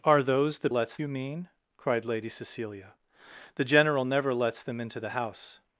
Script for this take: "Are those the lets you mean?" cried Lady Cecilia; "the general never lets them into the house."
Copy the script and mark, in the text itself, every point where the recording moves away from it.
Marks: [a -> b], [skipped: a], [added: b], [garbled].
"Are those the lets you mean?" cried Lady Cecilia; "the general never lets them into the house."